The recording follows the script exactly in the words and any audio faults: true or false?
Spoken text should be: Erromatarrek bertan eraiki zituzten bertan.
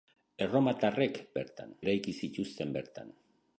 true